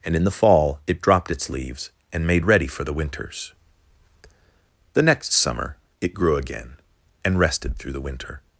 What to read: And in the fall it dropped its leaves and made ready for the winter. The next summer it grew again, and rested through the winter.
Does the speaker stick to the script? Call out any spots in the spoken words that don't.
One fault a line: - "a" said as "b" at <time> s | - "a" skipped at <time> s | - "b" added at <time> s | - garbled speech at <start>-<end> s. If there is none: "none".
- "winter" said as "winters" at 2.9 s